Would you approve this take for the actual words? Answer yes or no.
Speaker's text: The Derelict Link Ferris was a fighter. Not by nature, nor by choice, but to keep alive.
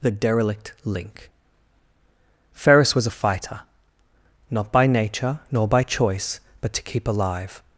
yes